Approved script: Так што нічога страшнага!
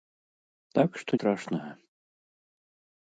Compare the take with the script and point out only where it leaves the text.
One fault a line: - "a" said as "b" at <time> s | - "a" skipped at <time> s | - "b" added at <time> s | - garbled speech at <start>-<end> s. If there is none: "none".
- "нічога" skipped at 1.1 s